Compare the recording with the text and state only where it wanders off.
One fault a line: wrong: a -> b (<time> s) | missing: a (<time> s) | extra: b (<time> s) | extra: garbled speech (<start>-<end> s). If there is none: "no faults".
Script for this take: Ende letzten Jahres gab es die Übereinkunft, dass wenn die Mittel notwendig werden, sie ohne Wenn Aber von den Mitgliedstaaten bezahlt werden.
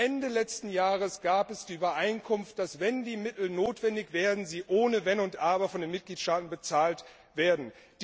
extra: und (5.2 s)